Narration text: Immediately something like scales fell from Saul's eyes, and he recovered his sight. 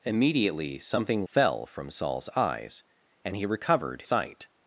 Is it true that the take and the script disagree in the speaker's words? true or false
true